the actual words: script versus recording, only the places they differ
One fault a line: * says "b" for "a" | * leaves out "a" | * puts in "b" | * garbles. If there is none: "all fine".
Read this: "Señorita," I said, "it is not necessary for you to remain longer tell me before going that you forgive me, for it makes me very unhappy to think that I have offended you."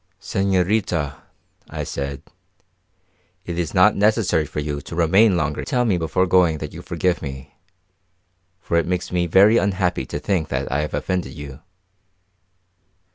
all fine